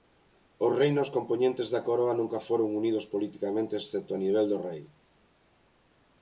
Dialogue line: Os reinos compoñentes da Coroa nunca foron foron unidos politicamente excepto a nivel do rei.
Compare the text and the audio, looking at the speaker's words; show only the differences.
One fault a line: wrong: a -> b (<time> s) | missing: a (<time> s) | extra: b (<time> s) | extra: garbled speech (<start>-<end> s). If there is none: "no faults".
missing: foron (2.7 s)